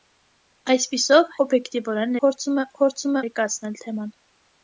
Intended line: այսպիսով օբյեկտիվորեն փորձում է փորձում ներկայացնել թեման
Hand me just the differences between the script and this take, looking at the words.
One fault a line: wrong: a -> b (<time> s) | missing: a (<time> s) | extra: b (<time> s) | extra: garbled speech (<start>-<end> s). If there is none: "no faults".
no faults